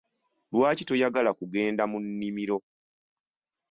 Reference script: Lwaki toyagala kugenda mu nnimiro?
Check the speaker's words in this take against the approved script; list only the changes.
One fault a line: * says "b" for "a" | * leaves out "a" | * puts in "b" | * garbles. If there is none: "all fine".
all fine